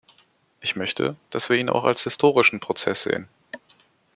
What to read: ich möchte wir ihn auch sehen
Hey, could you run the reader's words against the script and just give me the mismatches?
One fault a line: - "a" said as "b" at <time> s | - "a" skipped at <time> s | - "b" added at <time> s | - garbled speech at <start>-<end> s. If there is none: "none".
- "dass" added at 1.3 s
- "als historischen prozess" added at 1.8 s